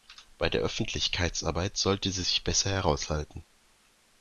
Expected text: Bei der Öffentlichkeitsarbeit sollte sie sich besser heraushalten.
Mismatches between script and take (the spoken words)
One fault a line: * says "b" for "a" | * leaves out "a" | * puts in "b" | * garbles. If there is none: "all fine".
all fine